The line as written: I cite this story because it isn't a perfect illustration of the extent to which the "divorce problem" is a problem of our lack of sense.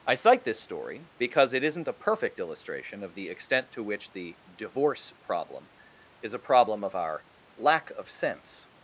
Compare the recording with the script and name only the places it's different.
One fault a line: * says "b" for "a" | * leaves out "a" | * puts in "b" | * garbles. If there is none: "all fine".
all fine